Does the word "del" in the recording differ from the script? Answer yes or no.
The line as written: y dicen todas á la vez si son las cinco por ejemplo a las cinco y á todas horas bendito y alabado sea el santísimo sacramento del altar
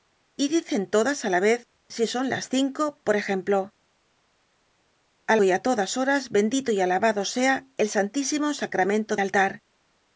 yes